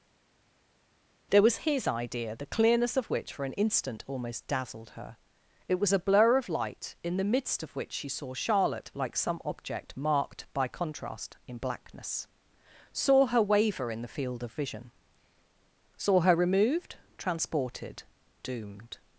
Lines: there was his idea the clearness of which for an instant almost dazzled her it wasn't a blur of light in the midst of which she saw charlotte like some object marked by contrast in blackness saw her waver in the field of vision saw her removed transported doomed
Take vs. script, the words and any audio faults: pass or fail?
fail